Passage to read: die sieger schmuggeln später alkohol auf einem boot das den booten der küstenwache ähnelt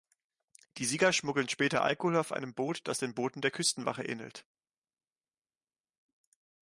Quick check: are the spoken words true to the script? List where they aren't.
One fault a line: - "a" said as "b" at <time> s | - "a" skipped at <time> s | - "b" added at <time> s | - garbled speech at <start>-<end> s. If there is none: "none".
none